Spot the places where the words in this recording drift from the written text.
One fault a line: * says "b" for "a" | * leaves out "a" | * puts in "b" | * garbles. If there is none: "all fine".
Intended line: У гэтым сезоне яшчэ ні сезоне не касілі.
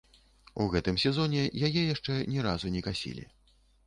* puts in "яе"
* says "разу" for "сезоне"